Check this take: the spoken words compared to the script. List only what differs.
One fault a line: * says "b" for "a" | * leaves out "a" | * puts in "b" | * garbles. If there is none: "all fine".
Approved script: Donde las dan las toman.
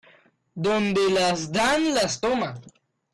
all fine